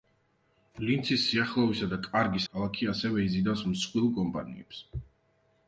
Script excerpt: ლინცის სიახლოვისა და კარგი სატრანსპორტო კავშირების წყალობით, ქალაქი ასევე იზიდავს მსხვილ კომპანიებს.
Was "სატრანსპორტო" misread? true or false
true